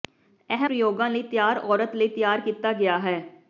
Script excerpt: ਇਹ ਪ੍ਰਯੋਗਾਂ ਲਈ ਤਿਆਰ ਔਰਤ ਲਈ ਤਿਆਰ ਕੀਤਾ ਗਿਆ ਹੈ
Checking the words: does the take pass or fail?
pass